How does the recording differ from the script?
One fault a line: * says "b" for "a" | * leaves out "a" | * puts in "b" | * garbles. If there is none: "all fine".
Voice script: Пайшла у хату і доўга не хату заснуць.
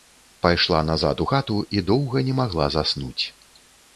* puts in "назад"
* says "магла" for "хату"